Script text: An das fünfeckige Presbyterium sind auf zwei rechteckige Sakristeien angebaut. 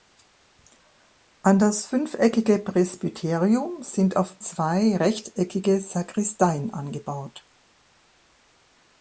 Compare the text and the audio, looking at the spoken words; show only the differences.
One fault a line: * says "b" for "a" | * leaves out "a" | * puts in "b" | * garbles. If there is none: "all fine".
all fine